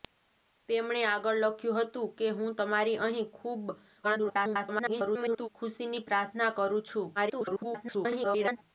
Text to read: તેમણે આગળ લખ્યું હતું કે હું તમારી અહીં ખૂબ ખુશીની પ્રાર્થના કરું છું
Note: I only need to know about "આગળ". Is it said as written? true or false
true